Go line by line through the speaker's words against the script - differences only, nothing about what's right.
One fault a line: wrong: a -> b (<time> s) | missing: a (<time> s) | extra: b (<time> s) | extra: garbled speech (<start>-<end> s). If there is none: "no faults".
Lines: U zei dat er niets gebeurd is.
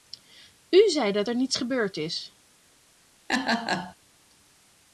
no faults